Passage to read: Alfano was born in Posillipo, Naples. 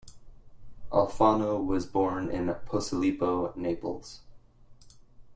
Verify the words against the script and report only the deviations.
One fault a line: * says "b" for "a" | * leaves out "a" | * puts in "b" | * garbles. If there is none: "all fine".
all fine